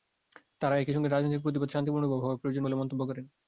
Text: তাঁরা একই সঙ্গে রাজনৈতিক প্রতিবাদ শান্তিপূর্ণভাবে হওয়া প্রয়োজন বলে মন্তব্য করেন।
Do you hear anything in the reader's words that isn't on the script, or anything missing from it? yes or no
no